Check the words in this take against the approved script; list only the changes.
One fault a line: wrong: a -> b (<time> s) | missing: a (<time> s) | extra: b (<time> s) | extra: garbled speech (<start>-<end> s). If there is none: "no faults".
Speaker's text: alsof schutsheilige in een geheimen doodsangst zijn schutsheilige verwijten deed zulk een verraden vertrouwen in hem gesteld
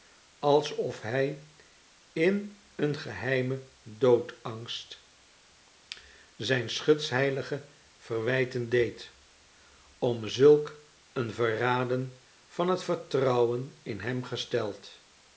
wrong: schutsheilige -> hij (1.0 s)
extra: om (10.0 s)
extra: van het (12.5 s)